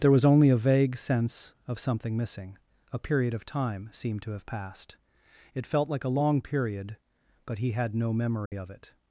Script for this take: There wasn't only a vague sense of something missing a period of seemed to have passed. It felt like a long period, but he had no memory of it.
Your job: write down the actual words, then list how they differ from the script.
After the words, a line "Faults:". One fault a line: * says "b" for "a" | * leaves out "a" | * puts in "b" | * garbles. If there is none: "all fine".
There was only a vague sense of something missing a period of time seemed to have passed. It felt like a long period, but he had no memory of it.
Faults:
* says "was" for "wasn't"
* puts in "time"